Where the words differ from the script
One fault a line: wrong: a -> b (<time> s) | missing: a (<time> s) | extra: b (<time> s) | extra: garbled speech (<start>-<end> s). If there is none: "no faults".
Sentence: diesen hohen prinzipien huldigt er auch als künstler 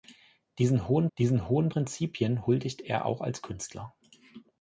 extra: diesen hohen (1.2 s)